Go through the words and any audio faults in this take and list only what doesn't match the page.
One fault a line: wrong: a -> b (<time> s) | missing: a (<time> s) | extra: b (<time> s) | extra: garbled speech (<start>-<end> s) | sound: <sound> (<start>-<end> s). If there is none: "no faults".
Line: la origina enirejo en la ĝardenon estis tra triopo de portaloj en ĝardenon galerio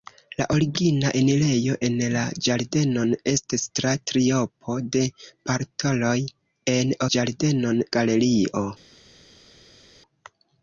no faults